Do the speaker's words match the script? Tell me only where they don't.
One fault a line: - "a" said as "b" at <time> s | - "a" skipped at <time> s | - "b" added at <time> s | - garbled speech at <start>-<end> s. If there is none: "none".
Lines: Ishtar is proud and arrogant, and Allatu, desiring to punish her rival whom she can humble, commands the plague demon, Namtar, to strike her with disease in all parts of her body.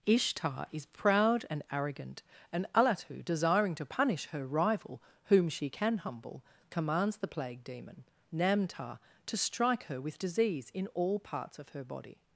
none